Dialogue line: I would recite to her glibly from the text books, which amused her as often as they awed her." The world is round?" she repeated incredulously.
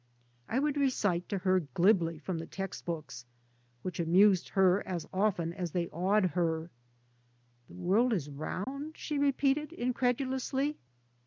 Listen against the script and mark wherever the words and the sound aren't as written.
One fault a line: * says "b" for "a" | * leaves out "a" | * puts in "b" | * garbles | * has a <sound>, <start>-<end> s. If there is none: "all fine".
* has a dropout, 8.6-8.7 s